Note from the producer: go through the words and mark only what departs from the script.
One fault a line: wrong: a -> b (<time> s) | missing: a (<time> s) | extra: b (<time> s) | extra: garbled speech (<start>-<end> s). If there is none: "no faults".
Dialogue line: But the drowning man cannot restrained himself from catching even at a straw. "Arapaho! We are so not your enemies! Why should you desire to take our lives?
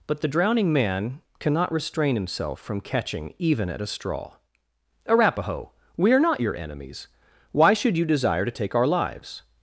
wrong: restrained -> restrain (1.7 s)
missing: so (6.2 s)